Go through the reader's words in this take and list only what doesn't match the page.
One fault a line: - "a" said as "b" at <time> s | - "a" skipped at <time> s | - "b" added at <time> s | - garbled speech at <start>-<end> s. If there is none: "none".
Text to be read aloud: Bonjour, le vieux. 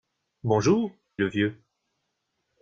none